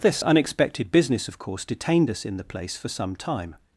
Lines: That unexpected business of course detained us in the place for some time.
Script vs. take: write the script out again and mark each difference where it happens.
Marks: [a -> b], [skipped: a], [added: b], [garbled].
[That -> This] unexpected business of course detained us in the place for some time.